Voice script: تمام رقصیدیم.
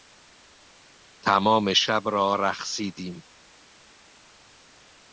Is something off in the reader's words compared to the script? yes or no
yes